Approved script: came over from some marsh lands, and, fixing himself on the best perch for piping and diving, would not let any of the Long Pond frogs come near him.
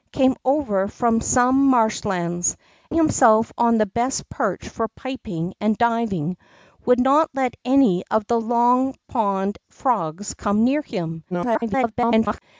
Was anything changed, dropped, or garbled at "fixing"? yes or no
yes